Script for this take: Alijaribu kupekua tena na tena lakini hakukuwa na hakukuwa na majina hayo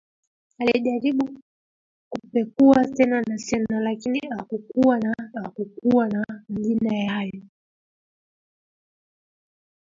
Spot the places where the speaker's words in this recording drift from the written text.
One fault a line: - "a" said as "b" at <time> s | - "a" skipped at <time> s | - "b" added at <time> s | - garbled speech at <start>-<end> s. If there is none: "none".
none